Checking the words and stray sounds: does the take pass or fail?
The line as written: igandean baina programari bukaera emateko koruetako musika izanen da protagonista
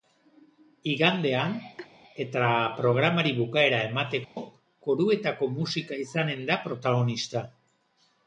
fail